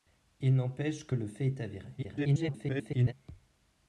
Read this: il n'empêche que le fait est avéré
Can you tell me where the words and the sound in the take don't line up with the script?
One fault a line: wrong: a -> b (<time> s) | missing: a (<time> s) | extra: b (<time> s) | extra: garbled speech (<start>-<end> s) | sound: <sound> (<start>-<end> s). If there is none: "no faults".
extra: garbled speech (2.0-3.1 s)